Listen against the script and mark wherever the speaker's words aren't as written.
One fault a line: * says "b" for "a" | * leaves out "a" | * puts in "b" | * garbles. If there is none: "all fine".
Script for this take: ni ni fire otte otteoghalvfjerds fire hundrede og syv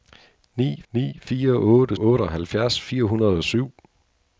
all fine